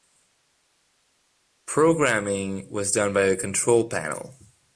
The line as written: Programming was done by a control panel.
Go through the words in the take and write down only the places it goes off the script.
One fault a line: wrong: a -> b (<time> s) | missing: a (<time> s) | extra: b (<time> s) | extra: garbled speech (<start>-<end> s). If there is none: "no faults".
no faults